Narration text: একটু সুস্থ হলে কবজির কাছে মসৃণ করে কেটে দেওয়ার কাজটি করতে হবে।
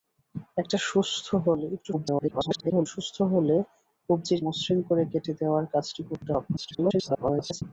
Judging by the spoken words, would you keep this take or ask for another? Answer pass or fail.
fail